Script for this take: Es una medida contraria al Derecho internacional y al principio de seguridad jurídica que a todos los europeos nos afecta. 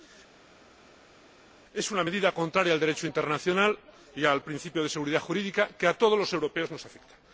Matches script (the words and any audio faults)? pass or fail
pass